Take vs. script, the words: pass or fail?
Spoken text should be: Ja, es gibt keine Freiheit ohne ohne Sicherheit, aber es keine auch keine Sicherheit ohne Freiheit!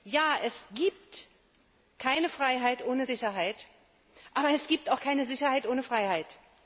fail